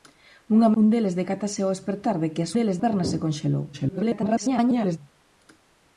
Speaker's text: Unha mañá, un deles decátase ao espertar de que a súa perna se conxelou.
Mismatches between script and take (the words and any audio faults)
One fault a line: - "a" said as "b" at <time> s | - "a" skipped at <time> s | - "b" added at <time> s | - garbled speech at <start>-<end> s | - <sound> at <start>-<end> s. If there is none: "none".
- "mañá" skipped at 0.7 s
- "súa" said as "deles" at 2.5 s
- garbled speech at 3.7-5.0 s